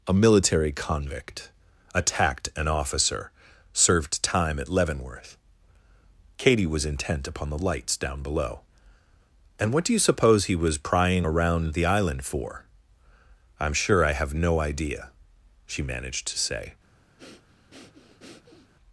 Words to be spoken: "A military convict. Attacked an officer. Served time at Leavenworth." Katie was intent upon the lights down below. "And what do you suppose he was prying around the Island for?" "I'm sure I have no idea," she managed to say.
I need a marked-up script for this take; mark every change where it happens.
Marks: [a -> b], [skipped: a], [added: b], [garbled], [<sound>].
"A military convict. Attacked an officer. Served time at Leavenworth." Katie was intent upon the lights down below. "And what do you suppose he was prying around the Island for?" "I'm sure I have no idea," she managed to say. [breath]